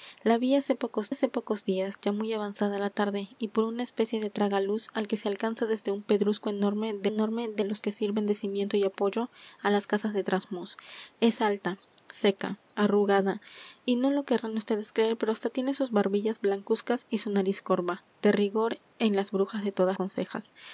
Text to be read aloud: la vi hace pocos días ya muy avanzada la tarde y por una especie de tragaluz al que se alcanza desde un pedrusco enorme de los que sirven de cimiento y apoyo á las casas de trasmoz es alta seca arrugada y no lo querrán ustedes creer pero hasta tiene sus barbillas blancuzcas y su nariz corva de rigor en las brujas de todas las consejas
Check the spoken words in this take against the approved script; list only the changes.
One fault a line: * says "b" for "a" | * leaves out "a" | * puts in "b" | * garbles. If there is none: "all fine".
* puts in "hace pocos"
* puts in "enorme de"
* leaves out "las"